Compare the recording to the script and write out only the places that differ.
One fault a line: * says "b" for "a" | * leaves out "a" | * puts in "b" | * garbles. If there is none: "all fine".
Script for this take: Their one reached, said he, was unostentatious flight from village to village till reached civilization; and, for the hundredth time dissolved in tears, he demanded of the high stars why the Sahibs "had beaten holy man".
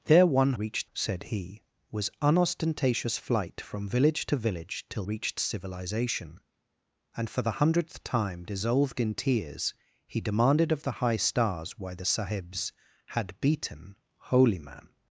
all fine